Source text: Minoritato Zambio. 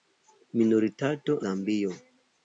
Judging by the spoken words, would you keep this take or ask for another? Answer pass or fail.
pass